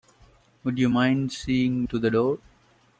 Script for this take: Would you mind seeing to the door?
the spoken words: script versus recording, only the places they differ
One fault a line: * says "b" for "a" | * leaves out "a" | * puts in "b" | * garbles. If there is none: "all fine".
all fine